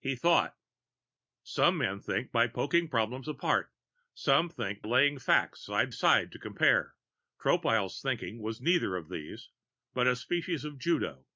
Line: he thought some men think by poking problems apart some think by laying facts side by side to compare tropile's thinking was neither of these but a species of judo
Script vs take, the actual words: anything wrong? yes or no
yes